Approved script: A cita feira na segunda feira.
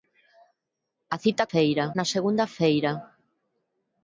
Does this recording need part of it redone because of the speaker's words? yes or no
no